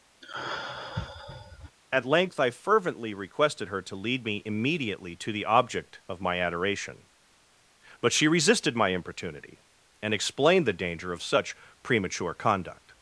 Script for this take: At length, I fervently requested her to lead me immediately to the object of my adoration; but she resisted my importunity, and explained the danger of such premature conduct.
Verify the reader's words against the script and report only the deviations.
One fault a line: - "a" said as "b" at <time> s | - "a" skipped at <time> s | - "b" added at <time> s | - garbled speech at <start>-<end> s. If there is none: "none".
none